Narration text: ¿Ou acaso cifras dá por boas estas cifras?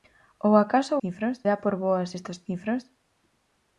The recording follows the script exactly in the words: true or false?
true